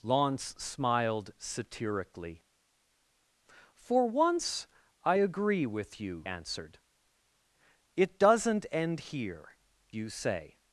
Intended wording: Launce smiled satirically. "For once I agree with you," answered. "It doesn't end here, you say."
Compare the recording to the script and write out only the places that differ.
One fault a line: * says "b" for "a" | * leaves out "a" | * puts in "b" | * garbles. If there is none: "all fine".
all fine